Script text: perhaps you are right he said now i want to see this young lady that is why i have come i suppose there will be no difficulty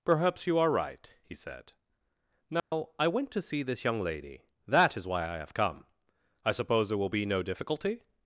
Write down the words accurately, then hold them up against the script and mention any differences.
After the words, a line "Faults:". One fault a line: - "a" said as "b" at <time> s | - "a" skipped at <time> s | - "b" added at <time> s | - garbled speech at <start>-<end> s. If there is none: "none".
perhaps you are right he said now i went to see this young lady that is why i have come i suppose there will be no difficulty
Faults:
- "want" said as "went" at 3.1 s